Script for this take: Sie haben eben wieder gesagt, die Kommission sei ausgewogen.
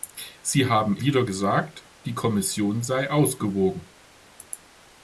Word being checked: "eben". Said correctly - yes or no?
no